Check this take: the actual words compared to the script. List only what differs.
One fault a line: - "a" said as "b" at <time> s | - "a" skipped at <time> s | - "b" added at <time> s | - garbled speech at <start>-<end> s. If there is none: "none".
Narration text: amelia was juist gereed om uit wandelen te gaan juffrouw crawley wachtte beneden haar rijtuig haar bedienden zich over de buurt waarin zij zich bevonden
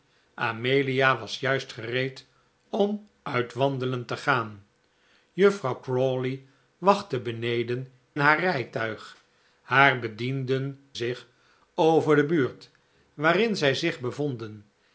none